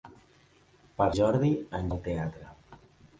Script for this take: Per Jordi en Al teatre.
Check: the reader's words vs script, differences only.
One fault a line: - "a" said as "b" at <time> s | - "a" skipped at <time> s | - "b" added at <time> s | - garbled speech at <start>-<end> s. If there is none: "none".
none